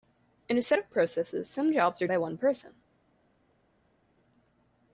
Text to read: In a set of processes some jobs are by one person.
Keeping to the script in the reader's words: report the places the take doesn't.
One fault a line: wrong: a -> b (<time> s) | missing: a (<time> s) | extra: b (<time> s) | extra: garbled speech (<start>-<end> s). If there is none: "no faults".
no faults